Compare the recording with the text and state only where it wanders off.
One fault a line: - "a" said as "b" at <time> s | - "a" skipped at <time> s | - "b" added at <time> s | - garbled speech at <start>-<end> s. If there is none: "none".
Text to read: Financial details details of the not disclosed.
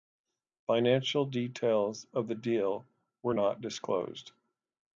- "details" skipped at 2.1 s
- "deal were" added at 2.4 s